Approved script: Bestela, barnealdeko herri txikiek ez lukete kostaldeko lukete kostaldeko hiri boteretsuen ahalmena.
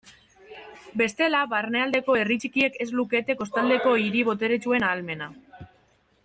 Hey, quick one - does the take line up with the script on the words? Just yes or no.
no